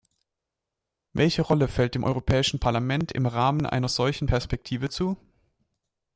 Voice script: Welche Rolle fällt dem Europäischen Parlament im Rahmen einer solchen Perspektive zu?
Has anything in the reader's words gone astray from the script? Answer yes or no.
no